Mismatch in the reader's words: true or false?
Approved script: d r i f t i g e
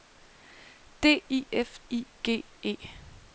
true